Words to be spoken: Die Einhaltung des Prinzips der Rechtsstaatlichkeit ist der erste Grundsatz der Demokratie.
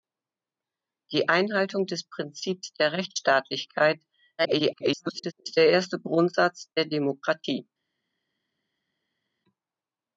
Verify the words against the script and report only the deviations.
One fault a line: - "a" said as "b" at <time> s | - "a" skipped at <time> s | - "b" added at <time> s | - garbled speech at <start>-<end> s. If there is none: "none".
- garbled speech at 4.4-5.3 s